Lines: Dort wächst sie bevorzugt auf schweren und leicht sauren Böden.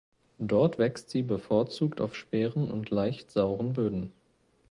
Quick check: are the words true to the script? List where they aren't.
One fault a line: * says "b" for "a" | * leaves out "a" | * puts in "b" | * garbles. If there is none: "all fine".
all fine